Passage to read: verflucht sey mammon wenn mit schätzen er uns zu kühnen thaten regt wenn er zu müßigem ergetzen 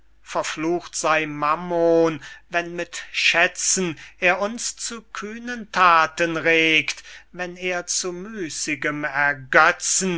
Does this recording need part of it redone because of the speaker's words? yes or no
no